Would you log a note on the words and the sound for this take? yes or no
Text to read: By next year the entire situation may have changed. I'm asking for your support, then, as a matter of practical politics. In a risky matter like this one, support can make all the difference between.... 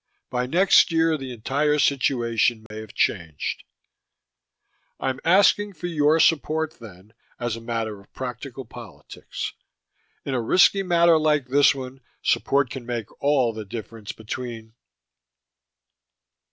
yes